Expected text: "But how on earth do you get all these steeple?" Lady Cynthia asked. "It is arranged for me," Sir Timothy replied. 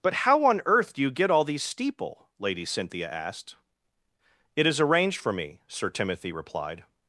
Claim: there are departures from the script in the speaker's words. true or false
false